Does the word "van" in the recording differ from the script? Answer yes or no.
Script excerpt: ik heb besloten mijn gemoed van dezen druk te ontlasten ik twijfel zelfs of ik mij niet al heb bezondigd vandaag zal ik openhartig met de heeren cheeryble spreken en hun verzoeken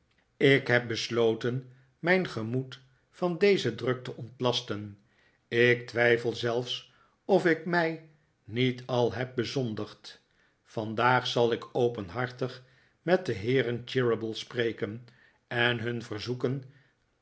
no